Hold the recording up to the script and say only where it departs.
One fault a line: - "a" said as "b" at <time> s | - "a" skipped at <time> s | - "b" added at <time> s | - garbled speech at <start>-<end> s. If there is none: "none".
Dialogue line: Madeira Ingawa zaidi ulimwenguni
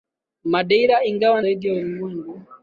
none